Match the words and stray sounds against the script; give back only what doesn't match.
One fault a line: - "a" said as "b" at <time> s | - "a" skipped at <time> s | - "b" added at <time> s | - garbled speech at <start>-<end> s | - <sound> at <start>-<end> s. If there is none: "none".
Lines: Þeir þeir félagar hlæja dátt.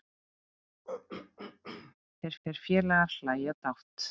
- throat clearing at 0.8-1.9 s